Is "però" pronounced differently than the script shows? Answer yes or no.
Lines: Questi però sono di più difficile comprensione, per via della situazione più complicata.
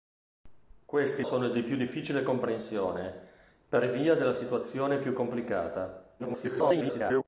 yes